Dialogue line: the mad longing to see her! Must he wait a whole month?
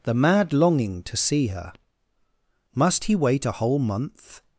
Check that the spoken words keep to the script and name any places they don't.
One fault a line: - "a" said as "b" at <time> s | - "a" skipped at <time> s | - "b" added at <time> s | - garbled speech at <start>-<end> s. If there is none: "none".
none